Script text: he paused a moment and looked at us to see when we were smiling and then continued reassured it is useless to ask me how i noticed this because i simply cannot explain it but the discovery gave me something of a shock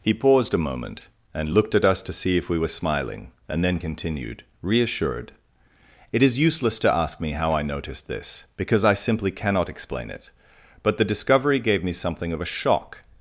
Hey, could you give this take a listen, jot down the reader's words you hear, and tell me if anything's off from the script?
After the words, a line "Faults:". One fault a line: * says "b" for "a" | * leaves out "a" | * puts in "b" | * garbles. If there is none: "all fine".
he paused a moment and looked at us to see if we were smiling and then continued reassured it is useless to ask me how i noticed this because i simply cannot explain it but the discovery gave me something of a shock
Faults:
* says "if" for "when"